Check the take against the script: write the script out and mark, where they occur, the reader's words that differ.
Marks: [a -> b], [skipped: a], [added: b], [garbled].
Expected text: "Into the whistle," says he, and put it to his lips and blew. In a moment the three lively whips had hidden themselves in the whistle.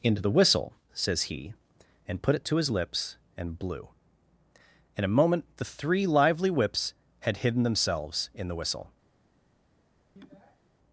"Into the whistle," says he, and put it to his lips and blew. In a moment the three lively whips had hidden themselves in the whistle.